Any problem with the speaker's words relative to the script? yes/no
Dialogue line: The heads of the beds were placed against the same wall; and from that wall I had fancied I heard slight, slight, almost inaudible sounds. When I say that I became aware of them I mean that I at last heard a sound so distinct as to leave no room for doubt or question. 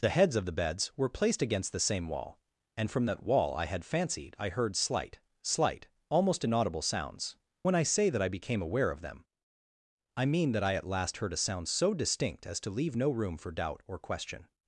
no